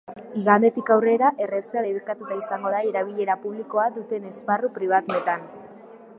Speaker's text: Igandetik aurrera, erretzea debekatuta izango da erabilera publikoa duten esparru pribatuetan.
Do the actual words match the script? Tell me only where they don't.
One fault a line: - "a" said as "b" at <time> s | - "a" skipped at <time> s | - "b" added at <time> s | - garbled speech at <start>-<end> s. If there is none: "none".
none